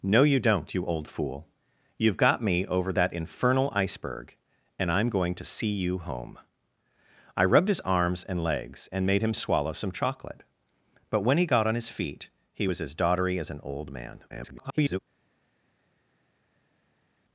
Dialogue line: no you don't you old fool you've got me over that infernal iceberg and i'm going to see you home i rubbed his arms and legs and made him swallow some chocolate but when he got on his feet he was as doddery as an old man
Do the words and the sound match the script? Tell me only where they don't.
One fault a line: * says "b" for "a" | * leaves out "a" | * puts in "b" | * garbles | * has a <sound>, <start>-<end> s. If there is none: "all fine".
* garbles